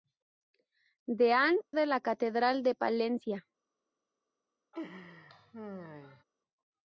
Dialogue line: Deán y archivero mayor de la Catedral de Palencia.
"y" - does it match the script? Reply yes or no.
no